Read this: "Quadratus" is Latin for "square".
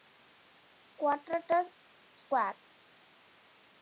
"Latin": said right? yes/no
no